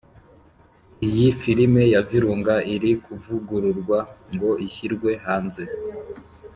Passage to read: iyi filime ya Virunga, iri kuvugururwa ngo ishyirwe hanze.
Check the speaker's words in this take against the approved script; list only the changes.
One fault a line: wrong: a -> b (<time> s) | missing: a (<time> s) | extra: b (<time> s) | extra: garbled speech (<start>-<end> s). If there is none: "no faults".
no faults